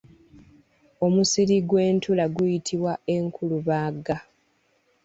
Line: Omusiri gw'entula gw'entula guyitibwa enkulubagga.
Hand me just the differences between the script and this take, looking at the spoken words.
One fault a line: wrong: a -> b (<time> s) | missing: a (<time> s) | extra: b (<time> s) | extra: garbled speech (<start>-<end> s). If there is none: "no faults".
missing: gw'entula (2.2 s)